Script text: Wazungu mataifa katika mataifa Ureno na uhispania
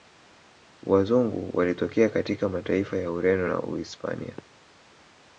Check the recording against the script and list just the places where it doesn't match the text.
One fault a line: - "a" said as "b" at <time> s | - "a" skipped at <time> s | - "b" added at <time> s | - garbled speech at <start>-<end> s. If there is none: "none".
- "mataifa" said as "walitokea" at 1.6 s
- "ya" added at 3.0 s